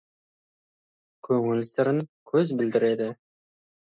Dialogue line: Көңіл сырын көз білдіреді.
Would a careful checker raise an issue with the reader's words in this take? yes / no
no